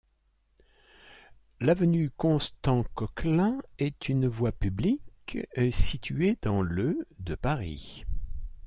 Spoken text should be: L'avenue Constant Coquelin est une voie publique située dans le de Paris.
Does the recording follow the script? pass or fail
pass